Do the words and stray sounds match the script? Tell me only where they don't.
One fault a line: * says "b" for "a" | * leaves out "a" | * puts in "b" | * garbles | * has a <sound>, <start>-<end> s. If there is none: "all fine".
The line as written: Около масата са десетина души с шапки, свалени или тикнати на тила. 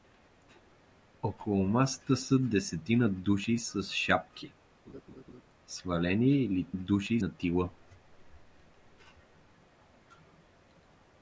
* has a laugh, 4.9-5.4 s
* says "души" for "тикнати"